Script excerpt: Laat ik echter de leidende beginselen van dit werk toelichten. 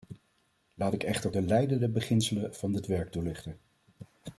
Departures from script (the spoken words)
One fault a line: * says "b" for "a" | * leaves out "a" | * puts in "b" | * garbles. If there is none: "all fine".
all fine